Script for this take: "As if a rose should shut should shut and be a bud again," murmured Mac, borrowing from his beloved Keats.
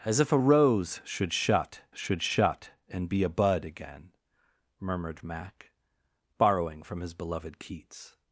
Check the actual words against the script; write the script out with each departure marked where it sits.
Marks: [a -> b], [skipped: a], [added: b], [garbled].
"As if a rose should shut should shut and be a bud again," murmured Mac, borrowing from his beloved Keats.